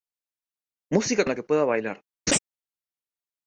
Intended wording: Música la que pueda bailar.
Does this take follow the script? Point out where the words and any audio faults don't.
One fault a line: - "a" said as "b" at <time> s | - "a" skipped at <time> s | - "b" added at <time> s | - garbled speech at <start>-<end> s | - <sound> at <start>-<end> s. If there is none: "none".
- laugh at 2.3-2.4 s